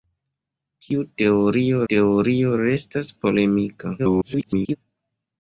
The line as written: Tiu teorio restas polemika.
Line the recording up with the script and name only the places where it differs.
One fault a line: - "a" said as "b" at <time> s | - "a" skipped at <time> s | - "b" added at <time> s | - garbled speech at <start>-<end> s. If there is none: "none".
- "teorio" added at 1.9 s
- garbled speech at 4.0-4.8 s